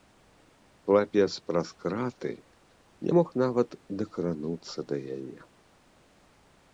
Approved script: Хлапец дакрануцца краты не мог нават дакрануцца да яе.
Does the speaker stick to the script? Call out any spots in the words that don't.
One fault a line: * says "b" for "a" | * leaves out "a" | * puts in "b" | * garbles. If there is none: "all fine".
* says "праз" for "дакрануцца"